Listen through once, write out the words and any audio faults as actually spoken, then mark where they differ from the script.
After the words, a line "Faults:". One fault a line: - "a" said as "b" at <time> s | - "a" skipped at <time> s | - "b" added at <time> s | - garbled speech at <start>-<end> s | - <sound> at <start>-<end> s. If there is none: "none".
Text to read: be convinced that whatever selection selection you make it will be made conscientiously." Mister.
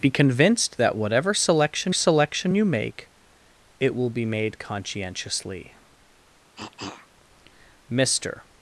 be convinced that whatever selection selection you make it will be made conscientiously." Mister.
Faults:
- cough at 6.6-7.1 s